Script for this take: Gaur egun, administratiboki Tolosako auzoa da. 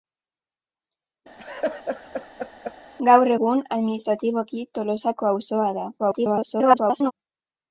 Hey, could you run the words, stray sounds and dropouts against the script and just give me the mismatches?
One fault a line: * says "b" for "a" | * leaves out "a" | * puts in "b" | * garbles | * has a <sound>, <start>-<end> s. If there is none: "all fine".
* has a laugh, 1.4-2.7 s
* garbles